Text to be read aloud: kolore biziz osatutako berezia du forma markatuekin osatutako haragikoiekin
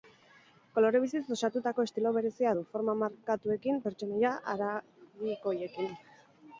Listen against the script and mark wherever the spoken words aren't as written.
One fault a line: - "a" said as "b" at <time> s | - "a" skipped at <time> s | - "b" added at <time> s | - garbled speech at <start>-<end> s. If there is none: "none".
- "estilo" added at 1.9 s
- "osatutako" said as "pertsonaia" at 3.9 s